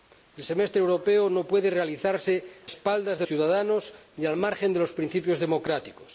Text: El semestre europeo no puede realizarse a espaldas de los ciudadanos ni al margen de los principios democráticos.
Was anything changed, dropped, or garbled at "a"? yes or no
yes